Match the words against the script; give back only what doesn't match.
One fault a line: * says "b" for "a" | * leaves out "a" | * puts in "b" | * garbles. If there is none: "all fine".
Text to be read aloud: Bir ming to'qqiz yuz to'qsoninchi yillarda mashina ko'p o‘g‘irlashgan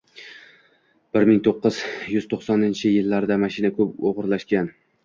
all fine